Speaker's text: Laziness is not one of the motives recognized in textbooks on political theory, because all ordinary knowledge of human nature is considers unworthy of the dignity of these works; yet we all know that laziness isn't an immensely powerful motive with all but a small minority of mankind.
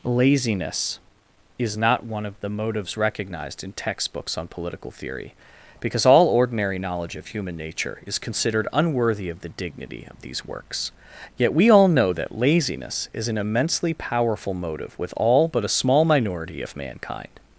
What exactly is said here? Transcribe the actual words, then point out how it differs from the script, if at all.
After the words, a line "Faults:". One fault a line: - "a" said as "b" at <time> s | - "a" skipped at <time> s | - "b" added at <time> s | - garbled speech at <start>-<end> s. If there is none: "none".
Laziness is not one of the motives recognized in textbooks on political theory, because all ordinary knowledge of human nature is considered unworthy of the dignity of these works; yet we all know that laziness is an immensely powerful motive with all but a small minority of mankind.
Faults:
- "considers" said as "considered" at 8.2 s
- "isn't" said as "is" at 13.1 s